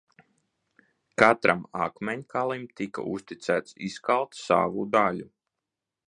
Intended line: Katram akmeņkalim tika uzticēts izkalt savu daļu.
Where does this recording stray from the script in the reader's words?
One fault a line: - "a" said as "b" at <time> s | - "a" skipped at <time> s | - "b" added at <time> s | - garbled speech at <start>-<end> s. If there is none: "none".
none